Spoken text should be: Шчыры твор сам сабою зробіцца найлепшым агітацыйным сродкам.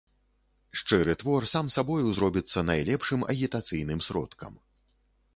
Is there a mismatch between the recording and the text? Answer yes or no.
no